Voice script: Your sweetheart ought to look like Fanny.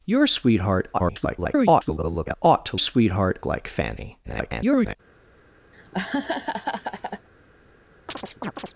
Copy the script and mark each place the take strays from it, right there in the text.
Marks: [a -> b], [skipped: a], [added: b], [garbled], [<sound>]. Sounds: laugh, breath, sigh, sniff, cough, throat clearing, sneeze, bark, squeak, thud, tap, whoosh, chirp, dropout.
Your sweetheart [garbled] ought to [look -> sweetheart] like Fanny. [garbled] [laugh] [chirp]